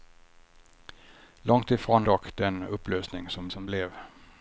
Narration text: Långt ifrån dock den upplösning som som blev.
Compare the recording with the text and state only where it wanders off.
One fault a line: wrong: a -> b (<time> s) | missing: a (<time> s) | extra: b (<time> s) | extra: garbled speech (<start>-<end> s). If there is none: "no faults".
no faults